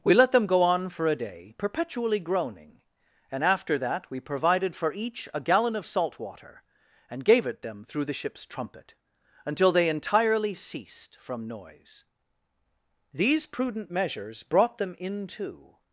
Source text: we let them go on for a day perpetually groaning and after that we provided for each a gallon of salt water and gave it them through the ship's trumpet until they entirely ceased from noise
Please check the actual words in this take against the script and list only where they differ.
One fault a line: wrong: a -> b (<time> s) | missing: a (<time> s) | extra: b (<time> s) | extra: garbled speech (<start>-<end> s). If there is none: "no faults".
extra: these prudent measures brought them into (13.1 s)